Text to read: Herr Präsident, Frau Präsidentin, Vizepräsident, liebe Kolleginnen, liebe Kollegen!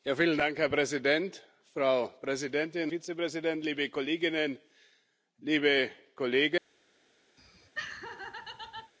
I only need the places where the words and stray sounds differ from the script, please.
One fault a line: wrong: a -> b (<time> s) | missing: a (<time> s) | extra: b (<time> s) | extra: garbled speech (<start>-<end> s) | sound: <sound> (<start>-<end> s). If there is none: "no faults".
sound: laugh (7.4-8.9 s)